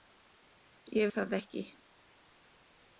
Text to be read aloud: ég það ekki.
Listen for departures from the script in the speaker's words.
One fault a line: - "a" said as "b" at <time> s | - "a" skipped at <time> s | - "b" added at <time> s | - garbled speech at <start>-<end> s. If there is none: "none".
none